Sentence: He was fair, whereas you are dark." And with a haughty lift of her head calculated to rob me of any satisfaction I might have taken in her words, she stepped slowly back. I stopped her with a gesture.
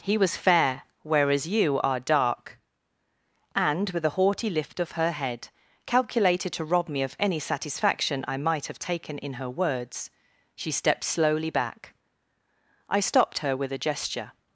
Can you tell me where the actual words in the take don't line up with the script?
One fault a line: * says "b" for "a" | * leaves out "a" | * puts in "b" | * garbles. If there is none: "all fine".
all fine